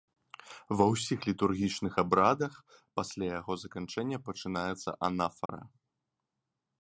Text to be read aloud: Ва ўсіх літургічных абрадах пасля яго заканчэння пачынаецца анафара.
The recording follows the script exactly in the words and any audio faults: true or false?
false